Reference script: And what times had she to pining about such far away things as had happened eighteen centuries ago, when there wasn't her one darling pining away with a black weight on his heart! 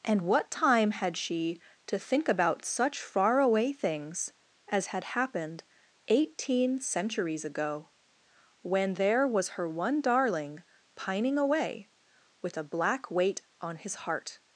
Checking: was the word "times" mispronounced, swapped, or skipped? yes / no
yes